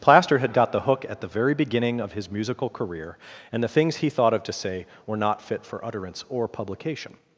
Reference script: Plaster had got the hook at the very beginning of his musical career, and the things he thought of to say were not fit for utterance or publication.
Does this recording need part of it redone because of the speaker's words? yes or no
no